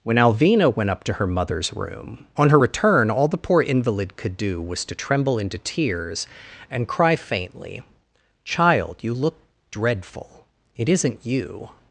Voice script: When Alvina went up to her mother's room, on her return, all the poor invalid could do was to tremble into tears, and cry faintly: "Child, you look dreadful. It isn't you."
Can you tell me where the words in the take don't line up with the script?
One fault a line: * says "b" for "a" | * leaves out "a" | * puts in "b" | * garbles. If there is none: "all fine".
all fine